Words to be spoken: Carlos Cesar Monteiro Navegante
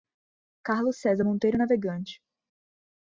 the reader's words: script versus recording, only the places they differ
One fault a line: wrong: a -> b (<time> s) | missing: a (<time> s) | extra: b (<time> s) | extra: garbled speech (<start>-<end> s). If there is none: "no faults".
no faults